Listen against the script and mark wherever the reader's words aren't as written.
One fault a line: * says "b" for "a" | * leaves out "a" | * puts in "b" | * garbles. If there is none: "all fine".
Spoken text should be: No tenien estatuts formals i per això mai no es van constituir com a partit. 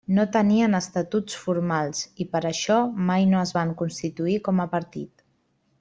all fine